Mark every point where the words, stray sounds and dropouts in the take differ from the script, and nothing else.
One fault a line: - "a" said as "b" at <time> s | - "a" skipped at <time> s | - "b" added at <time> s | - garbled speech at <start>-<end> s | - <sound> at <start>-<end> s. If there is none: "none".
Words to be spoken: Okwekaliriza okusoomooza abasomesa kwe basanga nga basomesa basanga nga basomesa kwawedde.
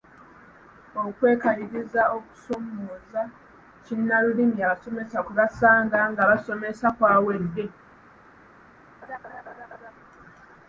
- "kinnalulimi" added at 3.9 s
- "basanga nga basomesa" skipped at 6.9 s
- laugh at 9.0-9.9 s